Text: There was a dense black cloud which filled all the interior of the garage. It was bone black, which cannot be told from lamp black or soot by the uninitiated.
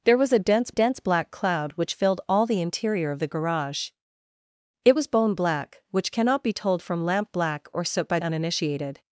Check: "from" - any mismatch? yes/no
no